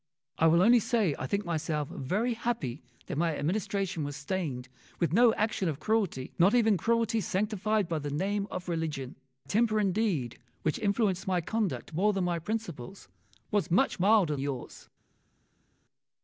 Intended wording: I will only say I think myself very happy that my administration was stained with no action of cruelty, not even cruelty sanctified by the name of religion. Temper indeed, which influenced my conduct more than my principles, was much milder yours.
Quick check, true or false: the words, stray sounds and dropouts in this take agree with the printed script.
true